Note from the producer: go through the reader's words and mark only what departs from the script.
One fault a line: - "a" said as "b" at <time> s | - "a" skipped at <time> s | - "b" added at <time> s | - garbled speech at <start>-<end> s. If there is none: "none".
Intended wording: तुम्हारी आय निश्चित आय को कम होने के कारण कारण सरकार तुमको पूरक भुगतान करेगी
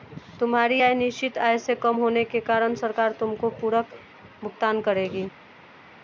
- "को" said as "से" at 1.6 s
- "कारण" skipped at 2.7 s